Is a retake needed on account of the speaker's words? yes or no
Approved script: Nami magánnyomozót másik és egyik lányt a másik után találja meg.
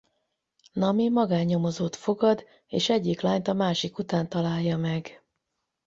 yes